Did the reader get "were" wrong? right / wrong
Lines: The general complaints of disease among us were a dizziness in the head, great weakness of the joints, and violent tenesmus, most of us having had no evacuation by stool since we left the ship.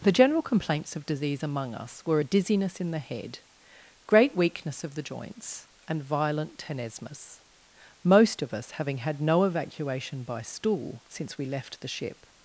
right